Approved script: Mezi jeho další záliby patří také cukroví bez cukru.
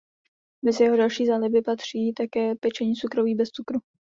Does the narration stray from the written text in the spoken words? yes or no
yes